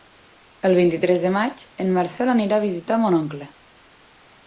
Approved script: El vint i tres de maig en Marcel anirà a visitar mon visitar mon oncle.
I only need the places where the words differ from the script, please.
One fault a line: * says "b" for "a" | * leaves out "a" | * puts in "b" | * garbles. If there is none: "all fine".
* leaves out "visitar mon"